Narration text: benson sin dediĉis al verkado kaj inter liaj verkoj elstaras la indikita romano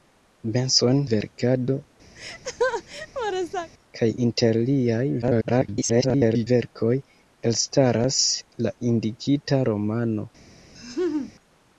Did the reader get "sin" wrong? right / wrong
wrong